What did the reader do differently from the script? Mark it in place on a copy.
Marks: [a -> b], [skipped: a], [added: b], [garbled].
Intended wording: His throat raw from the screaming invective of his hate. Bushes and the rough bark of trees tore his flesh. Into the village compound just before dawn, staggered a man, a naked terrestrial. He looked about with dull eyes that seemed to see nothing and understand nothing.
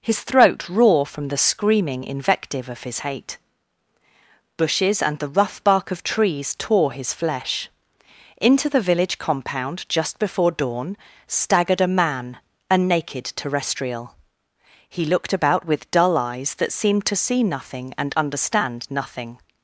His throat raw from the screaming invective of his hate. Bushes and the rough bark of trees tore his flesh. Into the village compound just before dawn, staggered a man, a naked terrestrial. He looked about with dull eyes that seemed to see nothing and understand nothing.